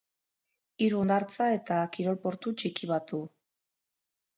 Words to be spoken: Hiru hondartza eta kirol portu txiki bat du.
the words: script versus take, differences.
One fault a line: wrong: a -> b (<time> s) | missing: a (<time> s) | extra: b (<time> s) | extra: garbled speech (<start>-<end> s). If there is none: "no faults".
no faults